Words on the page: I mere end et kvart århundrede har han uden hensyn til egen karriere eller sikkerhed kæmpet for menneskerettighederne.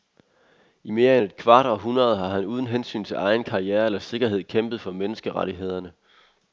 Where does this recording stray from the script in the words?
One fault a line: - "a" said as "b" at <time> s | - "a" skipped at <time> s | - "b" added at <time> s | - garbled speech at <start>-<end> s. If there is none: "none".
none